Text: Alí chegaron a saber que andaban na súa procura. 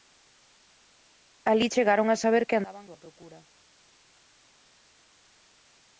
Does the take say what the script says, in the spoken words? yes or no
no